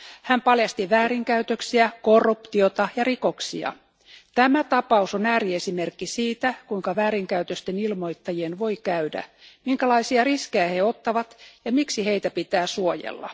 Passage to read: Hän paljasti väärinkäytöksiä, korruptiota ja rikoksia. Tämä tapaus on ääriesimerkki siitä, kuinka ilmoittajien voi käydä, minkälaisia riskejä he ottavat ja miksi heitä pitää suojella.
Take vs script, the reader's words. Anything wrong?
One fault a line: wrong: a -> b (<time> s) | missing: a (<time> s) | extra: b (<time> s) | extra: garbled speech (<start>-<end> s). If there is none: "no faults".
extra: väärinkäytösten (7.0 s)